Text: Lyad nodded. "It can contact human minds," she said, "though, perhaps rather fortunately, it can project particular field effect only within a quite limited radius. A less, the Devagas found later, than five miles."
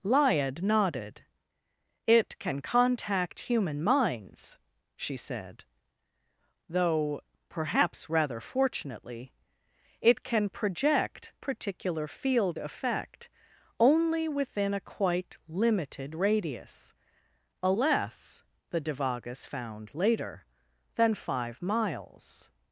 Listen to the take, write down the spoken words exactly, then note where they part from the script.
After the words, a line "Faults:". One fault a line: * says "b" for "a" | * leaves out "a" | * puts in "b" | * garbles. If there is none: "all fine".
Lyad nodded. "It can contact human minds," she said, "though, perhaps rather fortunately, it can project particular field effect only within a quite limited radius. A less, the Devagas found later, than five miles."
Faults:
all fine